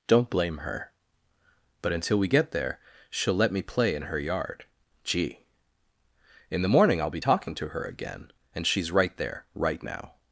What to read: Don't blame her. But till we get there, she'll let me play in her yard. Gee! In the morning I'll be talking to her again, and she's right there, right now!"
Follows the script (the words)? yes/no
no